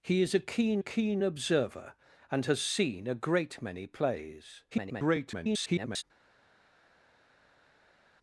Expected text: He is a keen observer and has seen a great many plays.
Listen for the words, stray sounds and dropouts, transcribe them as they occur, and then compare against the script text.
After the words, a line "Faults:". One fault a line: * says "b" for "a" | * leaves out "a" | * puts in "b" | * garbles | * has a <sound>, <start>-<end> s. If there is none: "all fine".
He is a keen keen observer and has seen a great many plays. [garbled]
Faults:
* puts in "keen"
* garbles